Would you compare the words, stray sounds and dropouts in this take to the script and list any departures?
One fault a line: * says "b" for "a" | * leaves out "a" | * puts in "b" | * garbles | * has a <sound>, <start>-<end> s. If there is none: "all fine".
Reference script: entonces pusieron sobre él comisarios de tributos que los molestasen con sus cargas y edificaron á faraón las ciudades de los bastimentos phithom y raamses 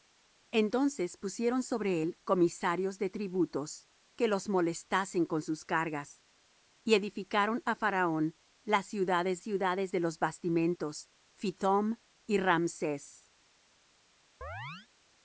* puts in "ciudades"
* has a chirp, 14.4-14.9 s